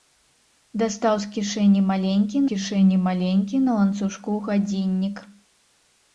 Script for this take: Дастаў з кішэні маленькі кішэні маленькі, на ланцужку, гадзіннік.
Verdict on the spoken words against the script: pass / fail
pass